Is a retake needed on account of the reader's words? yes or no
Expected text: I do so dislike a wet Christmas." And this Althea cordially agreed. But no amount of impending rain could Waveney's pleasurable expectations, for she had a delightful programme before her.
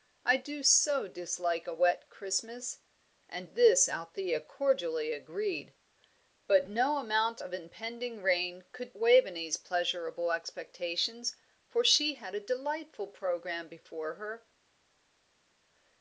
no